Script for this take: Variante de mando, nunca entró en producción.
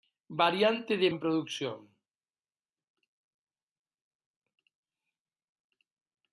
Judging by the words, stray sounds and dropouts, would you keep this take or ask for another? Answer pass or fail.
fail